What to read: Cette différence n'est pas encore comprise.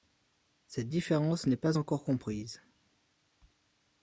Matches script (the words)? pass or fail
pass